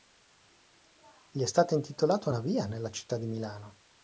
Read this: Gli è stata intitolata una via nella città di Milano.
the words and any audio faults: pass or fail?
pass